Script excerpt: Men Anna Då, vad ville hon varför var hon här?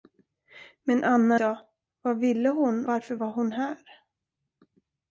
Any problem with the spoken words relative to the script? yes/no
no